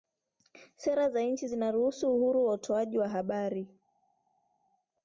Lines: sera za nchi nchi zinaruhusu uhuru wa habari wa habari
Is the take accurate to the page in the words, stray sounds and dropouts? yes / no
no